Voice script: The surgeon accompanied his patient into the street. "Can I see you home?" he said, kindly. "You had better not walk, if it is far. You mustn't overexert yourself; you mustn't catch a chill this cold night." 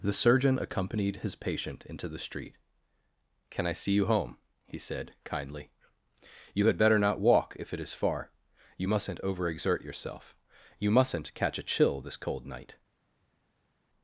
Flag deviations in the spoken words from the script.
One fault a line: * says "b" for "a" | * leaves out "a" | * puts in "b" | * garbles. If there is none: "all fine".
all fine